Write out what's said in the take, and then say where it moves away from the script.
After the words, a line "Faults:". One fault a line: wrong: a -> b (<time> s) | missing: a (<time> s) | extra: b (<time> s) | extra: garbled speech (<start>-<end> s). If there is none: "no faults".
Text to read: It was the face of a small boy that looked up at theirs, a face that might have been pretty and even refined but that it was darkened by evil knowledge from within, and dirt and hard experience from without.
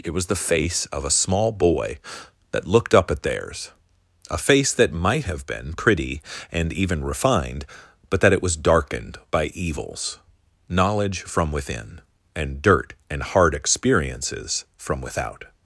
It was the face of a small boy that looked up at theirs, a face that might have been pretty and even refined but that it was darkened by evils knowledge from within, and dirt and hard experiences from without.
Faults:
wrong: evil -> evils (9.5 s)
wrong: experience -> experiences (13.5 s)